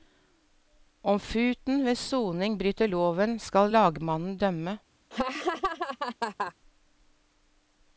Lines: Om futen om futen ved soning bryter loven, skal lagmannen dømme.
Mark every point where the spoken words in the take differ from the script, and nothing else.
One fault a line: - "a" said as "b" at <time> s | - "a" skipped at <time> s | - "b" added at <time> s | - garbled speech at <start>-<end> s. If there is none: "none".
- "om futen" skipped at 1.9 s